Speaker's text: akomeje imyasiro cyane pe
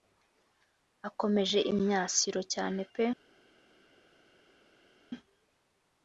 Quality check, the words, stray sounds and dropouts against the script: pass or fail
pass